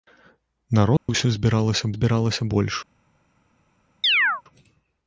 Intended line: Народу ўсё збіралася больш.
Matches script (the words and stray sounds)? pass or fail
fail